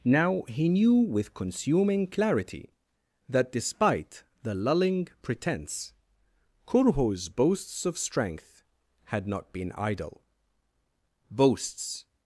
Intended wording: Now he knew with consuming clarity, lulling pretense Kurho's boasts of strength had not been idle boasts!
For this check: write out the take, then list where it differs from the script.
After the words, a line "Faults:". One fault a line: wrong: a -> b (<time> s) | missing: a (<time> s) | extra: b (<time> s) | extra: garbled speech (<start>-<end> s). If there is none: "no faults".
Now he knew with consuming clarity, that despite the lulling pretense Kurho's boasts of strength had not been idle boasts!
Faults:
extra: that despite the (3.3 s)